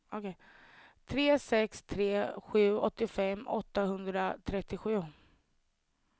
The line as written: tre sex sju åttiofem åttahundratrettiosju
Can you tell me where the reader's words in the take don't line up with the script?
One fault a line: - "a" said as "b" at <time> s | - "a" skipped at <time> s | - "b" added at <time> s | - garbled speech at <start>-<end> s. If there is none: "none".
- "tre" added at 1.8 s